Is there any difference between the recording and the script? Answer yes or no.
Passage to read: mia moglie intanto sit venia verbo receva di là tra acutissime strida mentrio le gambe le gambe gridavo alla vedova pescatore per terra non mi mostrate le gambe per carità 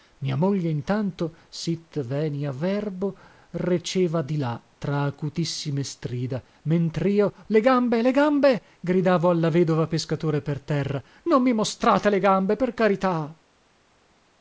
no